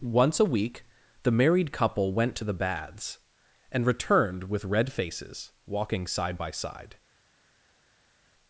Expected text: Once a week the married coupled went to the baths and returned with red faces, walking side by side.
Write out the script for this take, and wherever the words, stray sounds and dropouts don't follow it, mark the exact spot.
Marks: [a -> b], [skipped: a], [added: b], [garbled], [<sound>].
Once a week the married [coupled -> couple] went to the baths and returned with red faces, walking side by side.